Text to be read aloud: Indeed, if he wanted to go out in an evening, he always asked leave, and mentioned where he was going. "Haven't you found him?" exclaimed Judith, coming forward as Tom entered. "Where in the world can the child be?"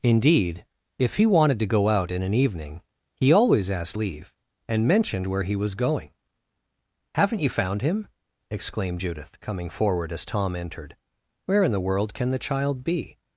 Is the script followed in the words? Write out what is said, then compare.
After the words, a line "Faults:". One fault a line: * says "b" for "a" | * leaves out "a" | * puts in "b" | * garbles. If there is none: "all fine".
Indeed, if he wanted to go out in an evening, he always asked leave, and mentioned where he was going. "Haven't you found him?" exclaimed Judith, coming forward as Tom entered. "Where in the world can the child be?"
Faults:
all fine